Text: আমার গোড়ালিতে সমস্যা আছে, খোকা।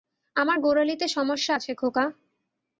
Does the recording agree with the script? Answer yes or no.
yes